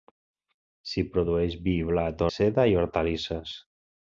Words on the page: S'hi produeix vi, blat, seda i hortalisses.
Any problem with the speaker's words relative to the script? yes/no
no